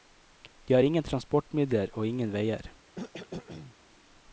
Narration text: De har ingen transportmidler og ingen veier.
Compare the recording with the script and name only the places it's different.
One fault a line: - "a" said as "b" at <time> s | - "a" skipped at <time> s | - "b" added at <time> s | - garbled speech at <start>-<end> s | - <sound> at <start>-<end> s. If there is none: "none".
- cough at 3.0-3.8 s